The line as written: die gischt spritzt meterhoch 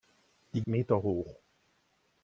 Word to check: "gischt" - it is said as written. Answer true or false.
false